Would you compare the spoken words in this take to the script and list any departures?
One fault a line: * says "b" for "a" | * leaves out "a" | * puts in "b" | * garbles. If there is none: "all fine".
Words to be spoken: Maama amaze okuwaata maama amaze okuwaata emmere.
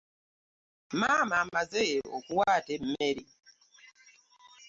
* leaves out "maama amaze okuwaata"